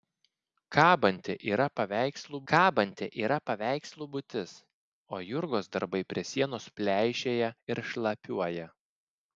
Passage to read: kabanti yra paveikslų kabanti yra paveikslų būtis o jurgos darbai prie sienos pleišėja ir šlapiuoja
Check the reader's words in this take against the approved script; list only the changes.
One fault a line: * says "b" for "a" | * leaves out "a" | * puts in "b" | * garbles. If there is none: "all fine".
all fine